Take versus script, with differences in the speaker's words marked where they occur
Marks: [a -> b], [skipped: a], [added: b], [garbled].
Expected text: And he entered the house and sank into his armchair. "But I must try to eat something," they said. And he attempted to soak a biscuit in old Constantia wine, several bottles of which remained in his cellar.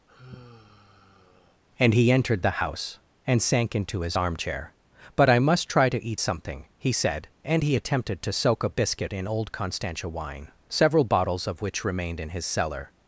And he entered the house and sank into his armchair. "But I must try to eat something," [they -> he] said. And he attempted to soak a biscuit in old Constantia wine, several bottles of which remained in his cellar.